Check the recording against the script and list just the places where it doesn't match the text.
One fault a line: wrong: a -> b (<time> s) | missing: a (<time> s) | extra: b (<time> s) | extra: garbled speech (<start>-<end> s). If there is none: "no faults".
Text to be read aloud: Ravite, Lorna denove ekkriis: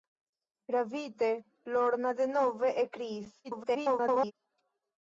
extra: garbled speech (3.4-4.3 s)